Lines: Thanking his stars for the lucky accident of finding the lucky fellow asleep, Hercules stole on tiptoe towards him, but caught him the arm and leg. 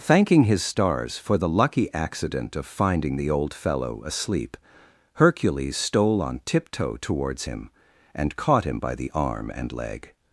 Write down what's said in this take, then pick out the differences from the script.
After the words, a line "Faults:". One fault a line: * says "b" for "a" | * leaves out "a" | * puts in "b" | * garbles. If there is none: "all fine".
Thanking his stars for the lucky accident of finding the old fellow asleep, Hercules stole on tiptoe towards him, and caught him by the arm and leg.
Faults:
* says "old" for "lucky"
* says "and" for "but"
* puts in "by"